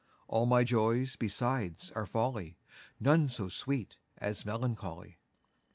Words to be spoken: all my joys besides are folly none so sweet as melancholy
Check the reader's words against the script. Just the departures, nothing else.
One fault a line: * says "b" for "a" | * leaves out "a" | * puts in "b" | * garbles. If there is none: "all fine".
all fine